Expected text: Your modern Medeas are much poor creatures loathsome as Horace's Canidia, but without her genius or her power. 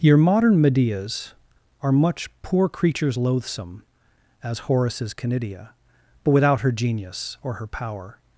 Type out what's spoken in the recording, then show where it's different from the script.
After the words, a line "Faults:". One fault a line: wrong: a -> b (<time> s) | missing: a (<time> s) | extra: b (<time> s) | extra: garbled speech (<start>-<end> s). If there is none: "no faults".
Your modern Medeas are much poor creatures loathsome as Horace's Canidia, but without her genius or her power.
Faults:
no faults